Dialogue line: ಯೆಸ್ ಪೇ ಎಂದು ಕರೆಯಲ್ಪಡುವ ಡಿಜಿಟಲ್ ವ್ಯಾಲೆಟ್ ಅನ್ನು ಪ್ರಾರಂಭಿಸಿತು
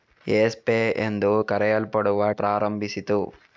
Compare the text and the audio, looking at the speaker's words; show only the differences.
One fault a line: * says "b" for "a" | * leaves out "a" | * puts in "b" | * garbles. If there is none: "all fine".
* leaves out "ಡಿಜಿಟಲ್ ವ್ಯಾಲೆಟ್ ಅನ್ನು"